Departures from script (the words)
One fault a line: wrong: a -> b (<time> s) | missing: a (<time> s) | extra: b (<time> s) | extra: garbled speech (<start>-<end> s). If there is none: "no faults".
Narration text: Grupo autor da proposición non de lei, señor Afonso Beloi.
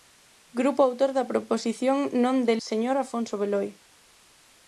missing: lei (2.5 s)